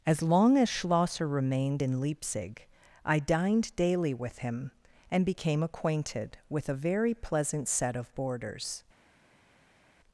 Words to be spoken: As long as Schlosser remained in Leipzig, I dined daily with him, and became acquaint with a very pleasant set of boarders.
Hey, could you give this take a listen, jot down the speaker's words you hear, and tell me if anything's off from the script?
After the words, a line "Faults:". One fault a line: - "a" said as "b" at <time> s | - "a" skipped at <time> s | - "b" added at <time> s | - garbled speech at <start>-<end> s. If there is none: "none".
As long as Schlosser remained in Leipzig, I dined daily with him, and became acquainted with a very pleasant set of boarders.
Faults:
- "acquaint" said as "acquainted" at 5.6 s